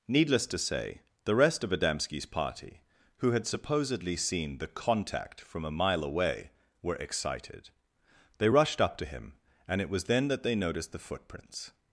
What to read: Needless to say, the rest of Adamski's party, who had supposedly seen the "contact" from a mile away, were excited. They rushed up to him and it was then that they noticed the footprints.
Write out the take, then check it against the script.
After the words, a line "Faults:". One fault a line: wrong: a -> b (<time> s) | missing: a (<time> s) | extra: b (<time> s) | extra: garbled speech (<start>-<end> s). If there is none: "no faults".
Needless to say, the rest of Adamski's party, who had supposedly seen the "contact" from a mile away, were excited. They rushed up to him and it was then that they noticed the footprints.
Faults:
no faults